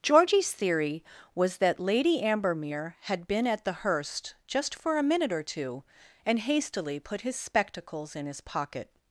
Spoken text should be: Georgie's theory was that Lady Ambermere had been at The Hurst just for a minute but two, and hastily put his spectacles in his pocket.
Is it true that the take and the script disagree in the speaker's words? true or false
true